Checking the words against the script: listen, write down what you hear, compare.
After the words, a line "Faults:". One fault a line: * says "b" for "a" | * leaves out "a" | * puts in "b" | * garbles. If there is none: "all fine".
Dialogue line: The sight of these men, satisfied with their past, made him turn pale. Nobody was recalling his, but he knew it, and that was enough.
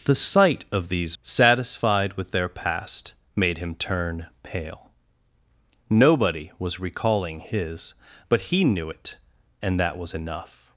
The sight of these satisfied with their past, made him turn pale. Nobody was recalling his, but he knew it, and that was enough.
Faults:
* leaves out "men"